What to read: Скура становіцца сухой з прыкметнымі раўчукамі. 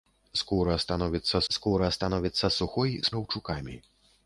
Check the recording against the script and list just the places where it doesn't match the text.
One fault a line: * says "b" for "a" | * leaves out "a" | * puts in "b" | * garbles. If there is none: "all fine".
* puts in "скура становіцца"
* leaves out "прыкметнымі"